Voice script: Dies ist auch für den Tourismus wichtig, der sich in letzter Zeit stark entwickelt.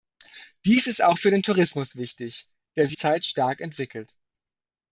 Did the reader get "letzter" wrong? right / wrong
wrong